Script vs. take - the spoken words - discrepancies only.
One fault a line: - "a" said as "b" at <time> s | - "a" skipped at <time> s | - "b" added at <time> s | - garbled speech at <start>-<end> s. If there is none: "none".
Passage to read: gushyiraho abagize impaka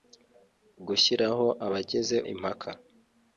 none